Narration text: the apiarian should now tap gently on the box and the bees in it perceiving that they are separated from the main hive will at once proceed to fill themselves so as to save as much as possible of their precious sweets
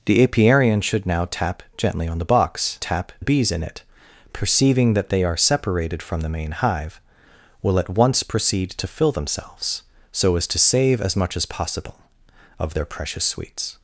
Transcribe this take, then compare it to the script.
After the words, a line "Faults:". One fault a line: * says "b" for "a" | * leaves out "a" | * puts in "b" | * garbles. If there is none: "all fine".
the apiarian should now tap gently on the box tap the bees in it perceiving that they are separated from the main hive will at once proceed to fill themselves so as to save as much as possible of their precious sweets
Faults:
* says "tap" for "and"